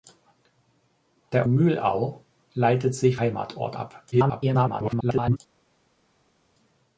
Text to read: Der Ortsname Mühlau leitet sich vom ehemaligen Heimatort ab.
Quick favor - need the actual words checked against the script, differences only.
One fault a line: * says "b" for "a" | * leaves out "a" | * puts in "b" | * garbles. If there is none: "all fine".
* leaves out "Ortsname"
* leaves out "vom ehemaligen"
* garbles